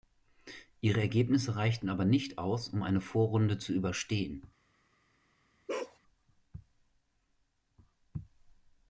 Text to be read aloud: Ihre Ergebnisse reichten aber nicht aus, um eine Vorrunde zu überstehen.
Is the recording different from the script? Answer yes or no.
no